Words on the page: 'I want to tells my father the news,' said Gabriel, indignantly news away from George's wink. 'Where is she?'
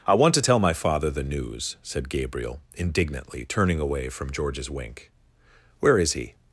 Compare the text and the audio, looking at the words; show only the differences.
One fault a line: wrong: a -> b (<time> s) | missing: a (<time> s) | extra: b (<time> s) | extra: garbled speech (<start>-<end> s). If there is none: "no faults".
wrong: tells -> tell (0.4 s)
wrong: news -> turning (3.4 s)
wrong: she -> he (6.1 s)